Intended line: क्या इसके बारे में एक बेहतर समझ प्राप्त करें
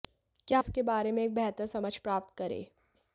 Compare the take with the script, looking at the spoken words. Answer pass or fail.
pass